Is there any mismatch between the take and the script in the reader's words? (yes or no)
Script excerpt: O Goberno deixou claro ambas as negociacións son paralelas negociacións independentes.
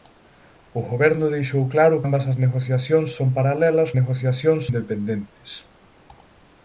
no